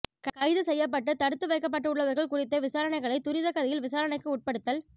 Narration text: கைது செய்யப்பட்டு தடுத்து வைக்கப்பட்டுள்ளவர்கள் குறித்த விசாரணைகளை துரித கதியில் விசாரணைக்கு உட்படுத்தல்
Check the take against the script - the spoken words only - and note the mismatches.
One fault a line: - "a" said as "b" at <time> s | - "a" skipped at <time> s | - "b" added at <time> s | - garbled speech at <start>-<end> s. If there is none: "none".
none